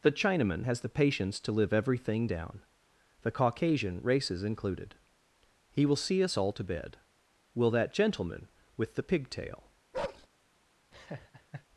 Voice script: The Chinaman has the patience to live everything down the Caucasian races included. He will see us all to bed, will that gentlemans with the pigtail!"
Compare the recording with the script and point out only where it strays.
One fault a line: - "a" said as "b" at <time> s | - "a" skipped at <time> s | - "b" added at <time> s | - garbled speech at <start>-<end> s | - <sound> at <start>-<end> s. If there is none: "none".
- "gentlemans" said as "gentleman" at 7.9 s
- bark at 9.9-10.3 s
- laugh at 10.9-11.7 s